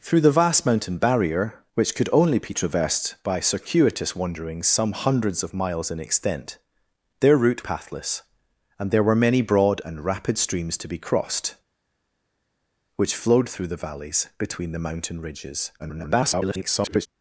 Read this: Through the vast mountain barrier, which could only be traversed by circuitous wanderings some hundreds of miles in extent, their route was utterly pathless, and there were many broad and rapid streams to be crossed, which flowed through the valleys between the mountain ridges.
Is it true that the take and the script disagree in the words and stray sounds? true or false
true